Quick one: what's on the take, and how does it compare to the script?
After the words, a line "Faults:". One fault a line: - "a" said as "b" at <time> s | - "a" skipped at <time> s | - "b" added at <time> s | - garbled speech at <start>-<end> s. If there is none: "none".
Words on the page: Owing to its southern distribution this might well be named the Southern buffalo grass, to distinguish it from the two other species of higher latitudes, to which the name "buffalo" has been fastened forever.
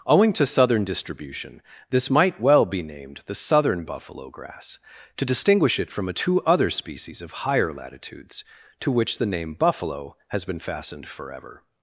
Owing to southern distribution this might well be named the Southern buffalo grass, to distinguish it from a two other species of higher latitudes, to which the name "buffalo" has been fastened forever.
Faults:
- "its" skipped at 0.5 s
- "the" said as "a" at 6.1 s